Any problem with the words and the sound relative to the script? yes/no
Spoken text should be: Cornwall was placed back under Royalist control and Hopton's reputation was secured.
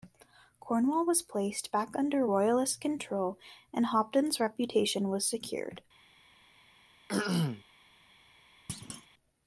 yes